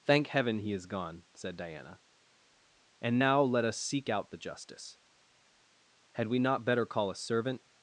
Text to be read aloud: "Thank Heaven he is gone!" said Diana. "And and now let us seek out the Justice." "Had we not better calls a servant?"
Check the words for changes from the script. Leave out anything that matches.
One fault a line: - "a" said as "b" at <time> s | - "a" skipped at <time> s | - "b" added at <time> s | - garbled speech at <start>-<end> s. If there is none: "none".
- "and" skipped at 3.2 s
- "calls" said as "call" at 6.8 s